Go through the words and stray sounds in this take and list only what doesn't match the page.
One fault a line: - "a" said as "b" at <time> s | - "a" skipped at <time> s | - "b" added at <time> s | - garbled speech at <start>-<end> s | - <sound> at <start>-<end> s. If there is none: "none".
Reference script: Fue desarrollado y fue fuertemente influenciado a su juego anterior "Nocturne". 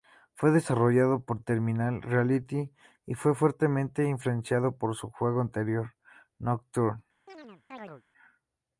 - "por Terminal Reality" added at 1.2 s
- "a" said as "por" at 4.8 s
- chirp at 7.3-8.0 s